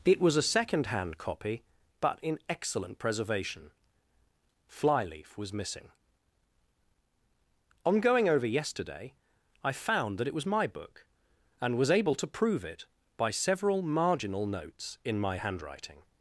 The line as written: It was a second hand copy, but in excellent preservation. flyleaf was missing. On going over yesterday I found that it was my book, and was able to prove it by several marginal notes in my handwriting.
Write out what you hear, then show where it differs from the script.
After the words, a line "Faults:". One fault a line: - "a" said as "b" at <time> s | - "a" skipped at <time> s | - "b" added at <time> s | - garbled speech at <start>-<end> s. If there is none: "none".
It was a second hand copy, but in excellent preservation. flyleaf was missing. On going over yesterday I found that it was my book, and was able to prove it by several marginal notes in my handwriting.
Faults:
none